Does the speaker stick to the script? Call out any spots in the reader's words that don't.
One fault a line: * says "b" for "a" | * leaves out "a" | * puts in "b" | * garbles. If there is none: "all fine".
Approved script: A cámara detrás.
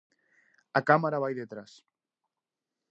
* puts in "vai"